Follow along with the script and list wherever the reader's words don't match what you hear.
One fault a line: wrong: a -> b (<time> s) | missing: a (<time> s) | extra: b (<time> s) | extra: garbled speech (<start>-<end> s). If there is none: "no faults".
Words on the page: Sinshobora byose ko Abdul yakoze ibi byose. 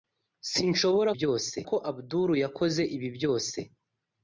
no faults